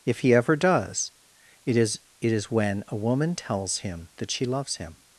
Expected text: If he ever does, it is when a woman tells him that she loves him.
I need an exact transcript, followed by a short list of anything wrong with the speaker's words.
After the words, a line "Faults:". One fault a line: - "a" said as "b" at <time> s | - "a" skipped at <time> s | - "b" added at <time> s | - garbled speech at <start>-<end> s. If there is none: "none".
If he ever does, it is it is when a woman tells him that she loves him.
Faults:
- "it is" added at 2.2 s